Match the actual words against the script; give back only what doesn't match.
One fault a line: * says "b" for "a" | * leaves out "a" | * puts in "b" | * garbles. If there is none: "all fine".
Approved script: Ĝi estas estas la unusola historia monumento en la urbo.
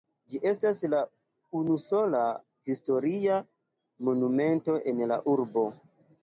* leaves out "estas"